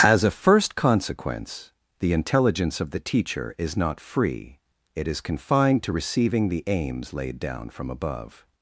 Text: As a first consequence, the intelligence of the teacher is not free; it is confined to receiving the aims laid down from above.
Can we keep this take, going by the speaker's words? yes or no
yes